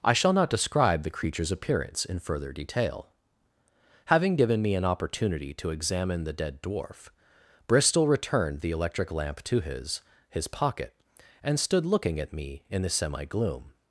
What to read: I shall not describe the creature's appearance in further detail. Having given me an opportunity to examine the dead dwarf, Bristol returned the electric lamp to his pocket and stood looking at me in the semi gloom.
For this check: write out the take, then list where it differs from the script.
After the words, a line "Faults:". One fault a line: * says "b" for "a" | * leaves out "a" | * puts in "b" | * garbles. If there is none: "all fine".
I shall not describe the creature's appearance in further detail. Having given me an opportunity to examine the dead dwarf, Bristol returned the electric lamp to his his pocket and stood looking at me in the semi gloom.
Faults:
* puts in "his"